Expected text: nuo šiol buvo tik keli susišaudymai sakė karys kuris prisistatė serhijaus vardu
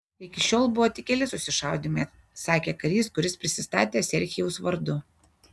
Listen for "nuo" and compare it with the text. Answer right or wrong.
wrong